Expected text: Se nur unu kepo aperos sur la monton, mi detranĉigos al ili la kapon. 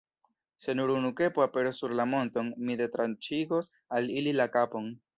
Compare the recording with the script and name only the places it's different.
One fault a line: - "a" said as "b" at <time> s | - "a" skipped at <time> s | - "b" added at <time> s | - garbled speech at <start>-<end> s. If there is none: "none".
none